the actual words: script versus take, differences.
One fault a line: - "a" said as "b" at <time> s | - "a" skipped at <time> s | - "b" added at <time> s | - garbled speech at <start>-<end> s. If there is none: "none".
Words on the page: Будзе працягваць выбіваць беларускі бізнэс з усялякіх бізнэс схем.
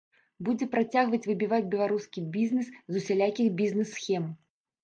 none